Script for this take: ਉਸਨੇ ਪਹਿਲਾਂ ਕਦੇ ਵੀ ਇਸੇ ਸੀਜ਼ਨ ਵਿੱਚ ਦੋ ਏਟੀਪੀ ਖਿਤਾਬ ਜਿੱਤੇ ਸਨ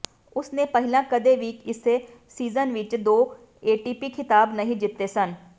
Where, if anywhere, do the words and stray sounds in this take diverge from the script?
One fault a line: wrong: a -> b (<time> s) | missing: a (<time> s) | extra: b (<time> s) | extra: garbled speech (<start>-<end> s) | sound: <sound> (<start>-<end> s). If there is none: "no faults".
extra: ਨਹੀਂ (4.5 s)